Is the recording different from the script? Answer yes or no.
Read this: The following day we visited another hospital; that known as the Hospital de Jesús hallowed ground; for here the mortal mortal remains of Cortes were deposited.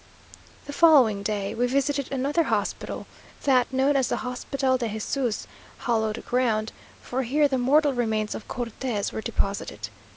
yes